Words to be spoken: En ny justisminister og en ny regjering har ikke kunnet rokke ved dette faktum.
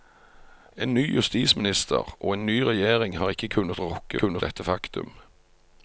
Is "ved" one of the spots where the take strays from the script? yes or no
yes